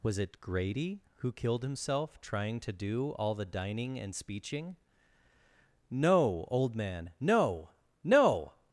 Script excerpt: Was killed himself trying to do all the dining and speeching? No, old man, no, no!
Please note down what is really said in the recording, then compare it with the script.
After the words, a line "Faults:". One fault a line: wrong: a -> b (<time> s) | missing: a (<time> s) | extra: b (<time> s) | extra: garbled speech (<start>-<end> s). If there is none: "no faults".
Was it Grady who killed himself trying to do all the dining and speeching? No, old man, no, no!
Faults:
extra: it Grady who (0.2 s)